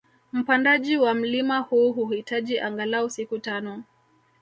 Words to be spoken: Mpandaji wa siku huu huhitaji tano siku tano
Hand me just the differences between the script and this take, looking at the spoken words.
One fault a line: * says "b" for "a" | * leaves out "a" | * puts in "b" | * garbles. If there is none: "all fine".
* says "mlima" for "siku"
* says "angalau" for "tano"